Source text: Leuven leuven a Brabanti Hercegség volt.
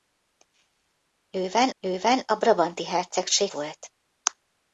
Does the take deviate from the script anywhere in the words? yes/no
no